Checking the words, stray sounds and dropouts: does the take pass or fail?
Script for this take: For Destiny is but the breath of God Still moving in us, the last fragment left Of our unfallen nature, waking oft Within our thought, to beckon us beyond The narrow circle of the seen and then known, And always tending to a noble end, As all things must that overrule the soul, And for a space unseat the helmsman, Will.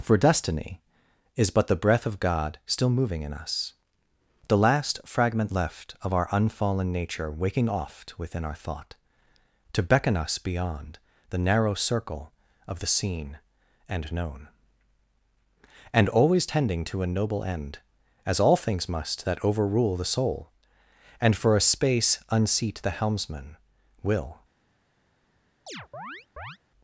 fail